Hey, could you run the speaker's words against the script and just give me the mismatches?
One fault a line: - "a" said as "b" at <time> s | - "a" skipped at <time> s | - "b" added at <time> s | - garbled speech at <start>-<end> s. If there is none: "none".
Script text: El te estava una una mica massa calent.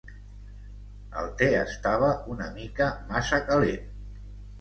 - "una" skipped at 2.5 s